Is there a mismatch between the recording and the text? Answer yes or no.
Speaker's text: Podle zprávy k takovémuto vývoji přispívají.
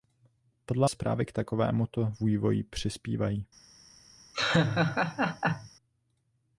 no